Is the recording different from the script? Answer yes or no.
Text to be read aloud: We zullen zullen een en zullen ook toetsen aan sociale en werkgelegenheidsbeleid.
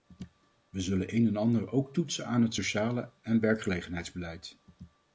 yes